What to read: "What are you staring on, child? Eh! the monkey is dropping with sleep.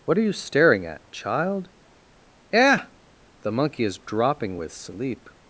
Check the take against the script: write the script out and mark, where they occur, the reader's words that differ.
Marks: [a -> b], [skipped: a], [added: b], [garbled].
"What are you staring [on, -> at] child? Eh! the monkey is dropping with sleep.